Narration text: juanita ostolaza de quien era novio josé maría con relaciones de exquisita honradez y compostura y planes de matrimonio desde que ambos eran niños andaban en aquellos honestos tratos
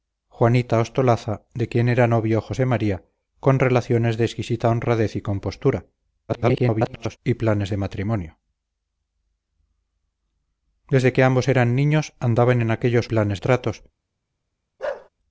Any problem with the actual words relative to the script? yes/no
yes